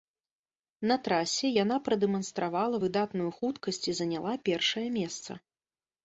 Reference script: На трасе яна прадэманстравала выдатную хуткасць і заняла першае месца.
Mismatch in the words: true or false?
false